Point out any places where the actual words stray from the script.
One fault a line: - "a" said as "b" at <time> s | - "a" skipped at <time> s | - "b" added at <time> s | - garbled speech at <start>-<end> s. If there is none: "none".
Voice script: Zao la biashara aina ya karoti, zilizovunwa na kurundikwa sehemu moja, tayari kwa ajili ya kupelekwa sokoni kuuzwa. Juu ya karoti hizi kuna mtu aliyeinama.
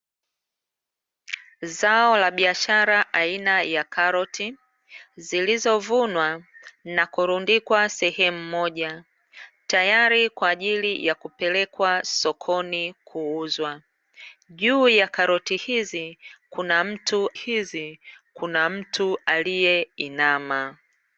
- "hizi kuna mtu" added at 17.3 s